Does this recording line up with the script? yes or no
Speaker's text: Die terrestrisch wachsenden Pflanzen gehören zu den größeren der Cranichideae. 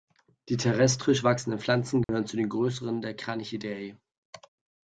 yes